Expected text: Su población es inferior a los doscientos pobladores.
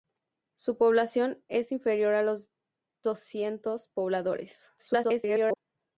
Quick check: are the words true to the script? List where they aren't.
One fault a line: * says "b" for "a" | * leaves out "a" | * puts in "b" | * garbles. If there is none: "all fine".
* garbles